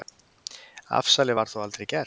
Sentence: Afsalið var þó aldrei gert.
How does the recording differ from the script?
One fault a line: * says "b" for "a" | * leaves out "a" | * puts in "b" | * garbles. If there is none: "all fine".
all fine